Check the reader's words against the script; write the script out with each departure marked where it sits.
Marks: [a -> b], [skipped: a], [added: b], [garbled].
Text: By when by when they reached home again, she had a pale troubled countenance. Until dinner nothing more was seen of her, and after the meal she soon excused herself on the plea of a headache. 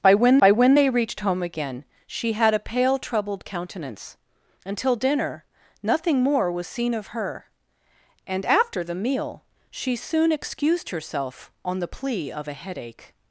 By when by when they reached home again, she had a pale troubled countenance. Until dinner nothing more was seen of her, and after the meal she soon excused herself on the plea of a headache.